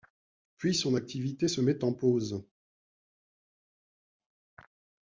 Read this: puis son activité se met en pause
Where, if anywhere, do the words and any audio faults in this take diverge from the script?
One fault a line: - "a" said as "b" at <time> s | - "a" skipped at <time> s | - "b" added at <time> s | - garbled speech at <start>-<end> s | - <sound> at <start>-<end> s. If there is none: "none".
none